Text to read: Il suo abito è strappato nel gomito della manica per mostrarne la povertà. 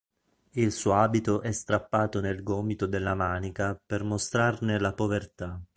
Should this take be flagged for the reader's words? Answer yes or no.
no